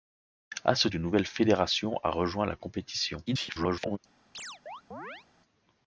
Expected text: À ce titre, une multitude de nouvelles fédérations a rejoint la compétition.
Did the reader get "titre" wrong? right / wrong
wrong